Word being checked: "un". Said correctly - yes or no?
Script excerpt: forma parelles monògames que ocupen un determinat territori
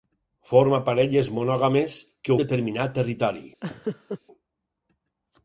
no